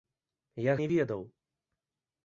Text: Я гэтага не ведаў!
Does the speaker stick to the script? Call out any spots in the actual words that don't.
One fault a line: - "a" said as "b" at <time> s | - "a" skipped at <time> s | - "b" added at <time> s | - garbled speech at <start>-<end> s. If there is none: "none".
- "гэтага" skipped at 0.7 s